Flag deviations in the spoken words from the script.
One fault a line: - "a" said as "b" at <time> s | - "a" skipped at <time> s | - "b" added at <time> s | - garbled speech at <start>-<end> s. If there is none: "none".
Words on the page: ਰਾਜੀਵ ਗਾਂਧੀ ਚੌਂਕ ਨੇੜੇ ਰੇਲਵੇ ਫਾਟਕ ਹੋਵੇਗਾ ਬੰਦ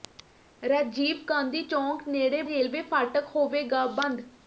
none